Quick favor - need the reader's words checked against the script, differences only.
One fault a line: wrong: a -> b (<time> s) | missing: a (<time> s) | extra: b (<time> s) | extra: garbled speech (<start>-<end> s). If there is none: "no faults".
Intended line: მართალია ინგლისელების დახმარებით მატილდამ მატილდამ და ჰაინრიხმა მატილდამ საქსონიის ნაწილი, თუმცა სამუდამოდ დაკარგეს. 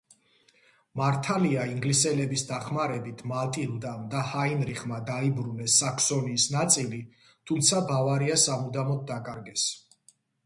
missing: მატილდამ (4.1 s)
wrong: მატილდამ -> დაიბრუნეს (5.1 s)
extra: ბავარია (7.9 s)